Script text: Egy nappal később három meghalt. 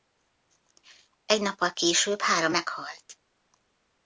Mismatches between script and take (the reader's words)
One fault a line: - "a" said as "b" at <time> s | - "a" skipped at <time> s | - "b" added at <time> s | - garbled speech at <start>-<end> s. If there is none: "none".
none